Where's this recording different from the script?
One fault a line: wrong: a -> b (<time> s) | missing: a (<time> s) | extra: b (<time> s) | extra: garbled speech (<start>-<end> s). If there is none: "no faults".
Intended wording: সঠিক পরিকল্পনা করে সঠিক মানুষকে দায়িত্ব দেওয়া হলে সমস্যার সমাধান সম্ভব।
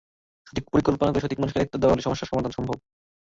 no faults